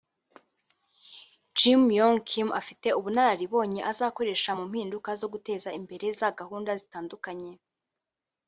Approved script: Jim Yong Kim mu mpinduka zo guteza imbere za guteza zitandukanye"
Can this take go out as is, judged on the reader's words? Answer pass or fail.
fail